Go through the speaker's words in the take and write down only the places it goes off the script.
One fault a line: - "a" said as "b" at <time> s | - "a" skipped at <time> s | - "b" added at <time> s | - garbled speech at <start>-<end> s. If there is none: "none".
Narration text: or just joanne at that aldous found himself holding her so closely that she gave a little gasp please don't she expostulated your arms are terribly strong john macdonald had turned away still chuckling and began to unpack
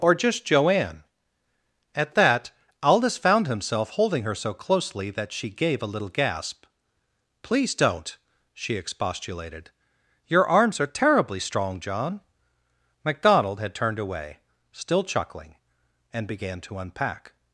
none